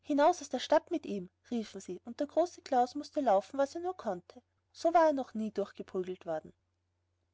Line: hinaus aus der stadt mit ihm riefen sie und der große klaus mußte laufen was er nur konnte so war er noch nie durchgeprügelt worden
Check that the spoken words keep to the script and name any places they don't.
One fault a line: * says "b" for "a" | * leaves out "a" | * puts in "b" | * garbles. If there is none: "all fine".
all fine